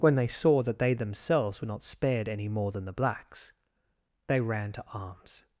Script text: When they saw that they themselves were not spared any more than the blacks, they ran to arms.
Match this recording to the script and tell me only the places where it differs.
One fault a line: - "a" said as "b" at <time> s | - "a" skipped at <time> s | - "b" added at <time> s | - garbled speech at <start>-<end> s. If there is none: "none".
none